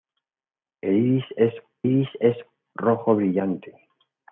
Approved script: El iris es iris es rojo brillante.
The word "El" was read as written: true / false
true